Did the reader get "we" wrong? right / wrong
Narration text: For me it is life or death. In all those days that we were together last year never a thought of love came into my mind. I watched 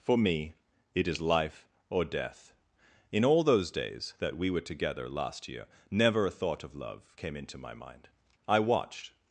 right